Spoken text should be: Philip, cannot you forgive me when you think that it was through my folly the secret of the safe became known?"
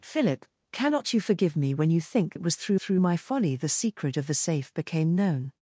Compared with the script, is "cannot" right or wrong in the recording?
right